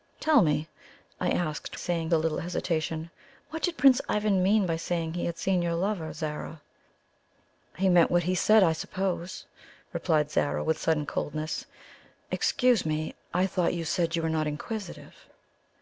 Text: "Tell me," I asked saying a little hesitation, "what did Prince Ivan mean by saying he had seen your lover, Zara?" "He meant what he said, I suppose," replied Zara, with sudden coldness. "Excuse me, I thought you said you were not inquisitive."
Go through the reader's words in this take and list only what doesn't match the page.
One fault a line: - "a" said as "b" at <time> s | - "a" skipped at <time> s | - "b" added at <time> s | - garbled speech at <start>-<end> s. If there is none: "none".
none